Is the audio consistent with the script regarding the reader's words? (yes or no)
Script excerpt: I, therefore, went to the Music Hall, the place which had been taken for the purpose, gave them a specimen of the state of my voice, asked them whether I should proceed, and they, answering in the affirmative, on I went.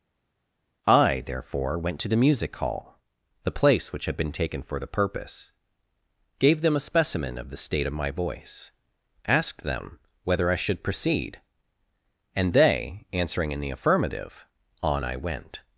yes